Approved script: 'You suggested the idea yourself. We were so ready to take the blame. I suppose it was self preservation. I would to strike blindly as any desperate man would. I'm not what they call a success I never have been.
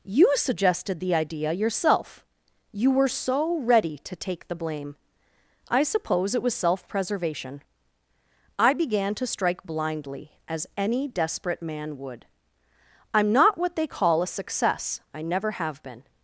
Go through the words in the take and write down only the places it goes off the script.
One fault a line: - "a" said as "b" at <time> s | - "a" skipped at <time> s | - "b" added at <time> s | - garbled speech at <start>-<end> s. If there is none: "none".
- "We" said as "You" at 2.7 s
- "would" said as "began" at 8.7 s